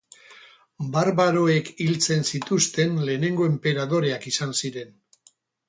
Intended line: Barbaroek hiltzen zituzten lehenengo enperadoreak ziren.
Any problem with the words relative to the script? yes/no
yes